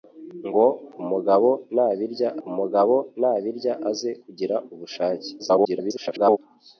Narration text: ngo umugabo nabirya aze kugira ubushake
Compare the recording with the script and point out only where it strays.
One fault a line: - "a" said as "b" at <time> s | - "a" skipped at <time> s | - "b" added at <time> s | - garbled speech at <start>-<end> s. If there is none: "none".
- "umugabo nabirya" added at 2.5 s
- garbled speech at 5.4-6.4 s